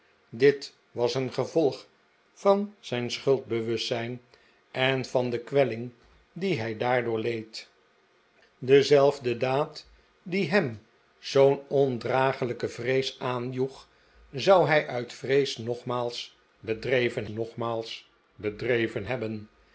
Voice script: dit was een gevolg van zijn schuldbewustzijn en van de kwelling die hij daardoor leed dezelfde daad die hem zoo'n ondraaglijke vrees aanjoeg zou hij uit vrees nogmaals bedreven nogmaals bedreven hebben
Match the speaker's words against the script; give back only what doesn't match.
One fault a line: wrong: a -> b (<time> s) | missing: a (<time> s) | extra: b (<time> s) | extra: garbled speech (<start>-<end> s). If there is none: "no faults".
no faults